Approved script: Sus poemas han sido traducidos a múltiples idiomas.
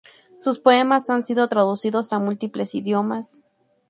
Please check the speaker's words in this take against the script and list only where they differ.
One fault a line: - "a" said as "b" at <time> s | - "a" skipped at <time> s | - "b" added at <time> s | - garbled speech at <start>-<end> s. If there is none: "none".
none